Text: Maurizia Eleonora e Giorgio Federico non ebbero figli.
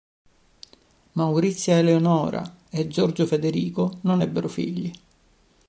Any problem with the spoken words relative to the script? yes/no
no